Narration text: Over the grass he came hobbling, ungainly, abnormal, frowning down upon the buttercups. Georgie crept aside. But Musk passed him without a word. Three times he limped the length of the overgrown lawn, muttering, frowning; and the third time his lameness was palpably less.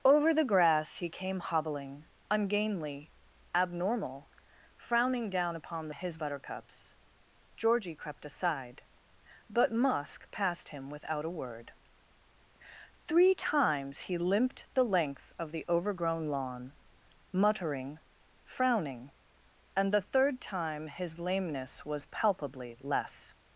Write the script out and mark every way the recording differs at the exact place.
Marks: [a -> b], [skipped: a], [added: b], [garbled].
Over the grass he came hobbling, ungainly, abnormal, frowning down upon [the -> his] buttercups. Georgie crept aside. But Musk passed him without a word. Three times he limped the length of the overgrown lawn, muttering, frowning; and the third time his lameness was palpably less.